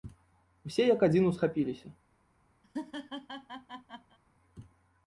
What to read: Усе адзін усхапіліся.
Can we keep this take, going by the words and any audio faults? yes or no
no